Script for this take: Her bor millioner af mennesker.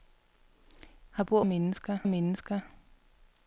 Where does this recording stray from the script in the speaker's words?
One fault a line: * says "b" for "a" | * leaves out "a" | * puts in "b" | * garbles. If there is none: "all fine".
* says "mennesker" for "millioner"